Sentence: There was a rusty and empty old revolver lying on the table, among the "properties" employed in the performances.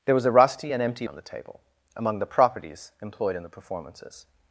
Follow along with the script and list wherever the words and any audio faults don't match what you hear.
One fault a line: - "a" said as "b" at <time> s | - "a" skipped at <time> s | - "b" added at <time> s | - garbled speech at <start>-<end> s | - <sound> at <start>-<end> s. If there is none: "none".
- "old revolver lying" skipped at 1.1 s